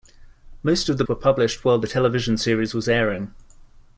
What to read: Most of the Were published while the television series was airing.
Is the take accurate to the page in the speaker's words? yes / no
yes